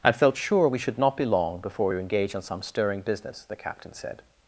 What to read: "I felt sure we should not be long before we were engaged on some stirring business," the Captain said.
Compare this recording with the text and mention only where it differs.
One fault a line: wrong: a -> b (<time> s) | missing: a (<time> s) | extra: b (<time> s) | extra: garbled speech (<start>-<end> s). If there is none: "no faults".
no faults